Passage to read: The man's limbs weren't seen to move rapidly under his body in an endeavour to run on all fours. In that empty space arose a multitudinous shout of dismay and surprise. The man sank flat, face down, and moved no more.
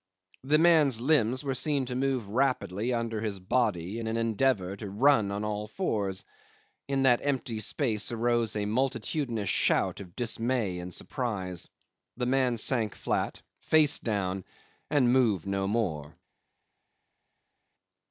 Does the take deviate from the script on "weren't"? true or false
true